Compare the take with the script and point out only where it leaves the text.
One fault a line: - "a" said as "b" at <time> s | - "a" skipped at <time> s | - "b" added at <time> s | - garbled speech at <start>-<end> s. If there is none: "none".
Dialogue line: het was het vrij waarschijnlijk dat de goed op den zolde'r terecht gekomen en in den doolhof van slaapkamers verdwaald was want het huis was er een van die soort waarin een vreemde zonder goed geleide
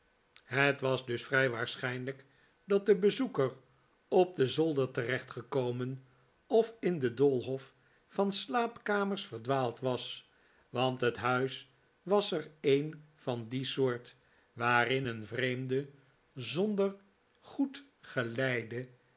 - "het" said as "dus" at 1.1 s
- "goed" said as "bezoeker" at 3.0 s
- "en" said as "of" at 6.5 s